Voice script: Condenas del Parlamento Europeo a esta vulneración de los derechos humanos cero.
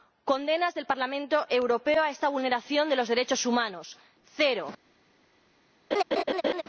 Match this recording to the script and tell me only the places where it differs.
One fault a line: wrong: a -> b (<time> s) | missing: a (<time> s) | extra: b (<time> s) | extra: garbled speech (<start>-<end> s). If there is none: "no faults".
no faults